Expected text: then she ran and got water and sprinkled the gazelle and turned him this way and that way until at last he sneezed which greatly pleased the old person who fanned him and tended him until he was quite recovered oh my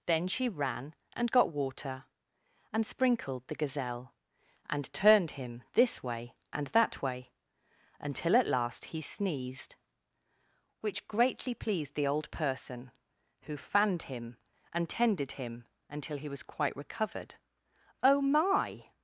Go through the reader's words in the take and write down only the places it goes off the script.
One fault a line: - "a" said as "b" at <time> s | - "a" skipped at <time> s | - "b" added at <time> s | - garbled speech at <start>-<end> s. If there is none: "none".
none